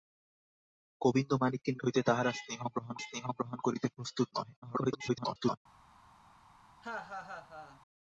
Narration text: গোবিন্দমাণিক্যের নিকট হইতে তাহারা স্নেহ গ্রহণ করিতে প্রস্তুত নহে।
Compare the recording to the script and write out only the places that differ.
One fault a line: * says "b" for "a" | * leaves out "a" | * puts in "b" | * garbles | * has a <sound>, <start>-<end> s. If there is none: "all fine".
* leaves out "নিকট"
* puts in "স্নেহ গ্রহণ"
* garbles
* has a laugh, 6.8-7.8 s